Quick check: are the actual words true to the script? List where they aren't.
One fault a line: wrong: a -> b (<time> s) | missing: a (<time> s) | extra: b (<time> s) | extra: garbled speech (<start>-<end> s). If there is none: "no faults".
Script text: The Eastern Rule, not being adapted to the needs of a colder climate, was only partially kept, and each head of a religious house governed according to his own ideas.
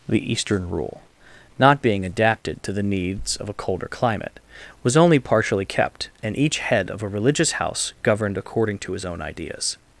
no faults